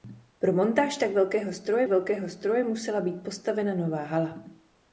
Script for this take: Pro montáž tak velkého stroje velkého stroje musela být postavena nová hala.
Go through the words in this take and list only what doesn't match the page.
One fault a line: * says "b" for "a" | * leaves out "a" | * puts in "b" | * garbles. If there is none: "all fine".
all fine